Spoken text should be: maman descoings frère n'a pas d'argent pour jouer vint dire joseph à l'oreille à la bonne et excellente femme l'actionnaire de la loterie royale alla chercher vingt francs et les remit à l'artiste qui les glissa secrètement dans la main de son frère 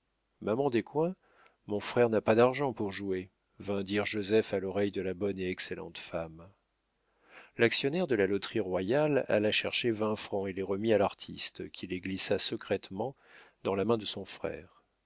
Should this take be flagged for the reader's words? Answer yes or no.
yes